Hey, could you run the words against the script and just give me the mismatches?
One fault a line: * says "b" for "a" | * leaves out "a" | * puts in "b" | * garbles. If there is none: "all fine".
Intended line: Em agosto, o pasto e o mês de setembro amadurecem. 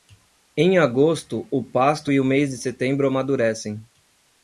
all fine